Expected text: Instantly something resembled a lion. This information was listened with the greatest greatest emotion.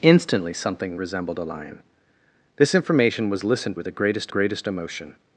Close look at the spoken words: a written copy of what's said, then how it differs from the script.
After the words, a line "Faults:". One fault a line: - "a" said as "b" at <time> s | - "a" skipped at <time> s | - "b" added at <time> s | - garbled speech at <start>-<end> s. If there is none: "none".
Instantly something resembled a lion. This information was listened with the greatest greatest emotion.
Faults:
none